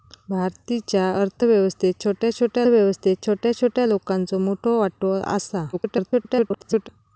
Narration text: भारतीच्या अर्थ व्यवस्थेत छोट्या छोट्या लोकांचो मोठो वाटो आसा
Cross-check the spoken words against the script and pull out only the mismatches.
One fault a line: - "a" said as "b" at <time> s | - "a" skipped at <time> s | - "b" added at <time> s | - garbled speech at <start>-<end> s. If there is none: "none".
- "व्यवस्थेत छोट्या छोट्या" added at 2.7 s
- garbled speech at 5.7-6.9 s